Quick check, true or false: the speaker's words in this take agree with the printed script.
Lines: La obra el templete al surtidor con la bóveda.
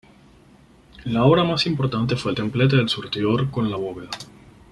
false